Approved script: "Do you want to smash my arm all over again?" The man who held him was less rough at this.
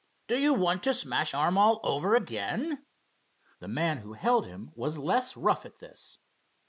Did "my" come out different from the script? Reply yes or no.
yes